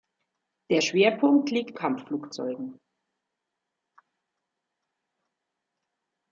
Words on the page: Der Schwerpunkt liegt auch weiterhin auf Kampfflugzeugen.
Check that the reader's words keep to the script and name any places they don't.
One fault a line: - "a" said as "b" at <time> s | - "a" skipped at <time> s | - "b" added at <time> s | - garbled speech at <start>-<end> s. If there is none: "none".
- "auch weiterhin auf" skipped at 1.8 s